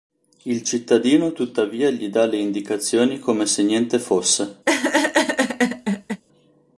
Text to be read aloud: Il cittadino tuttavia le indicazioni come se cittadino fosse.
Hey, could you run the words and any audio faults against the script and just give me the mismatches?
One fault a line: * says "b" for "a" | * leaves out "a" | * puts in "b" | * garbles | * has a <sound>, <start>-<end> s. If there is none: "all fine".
* puts in "gli dà"
* says "niente" for "cittadino"
* has a laugh, 4.7-6.2 s